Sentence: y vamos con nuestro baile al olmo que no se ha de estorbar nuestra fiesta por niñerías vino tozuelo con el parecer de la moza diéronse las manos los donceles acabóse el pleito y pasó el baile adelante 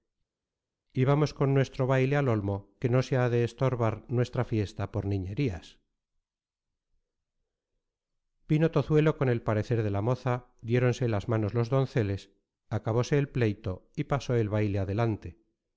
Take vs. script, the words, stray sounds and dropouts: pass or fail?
pass